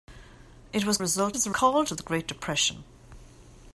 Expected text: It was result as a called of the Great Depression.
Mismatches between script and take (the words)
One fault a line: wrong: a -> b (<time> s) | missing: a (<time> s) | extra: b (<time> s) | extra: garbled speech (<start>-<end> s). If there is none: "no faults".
no faults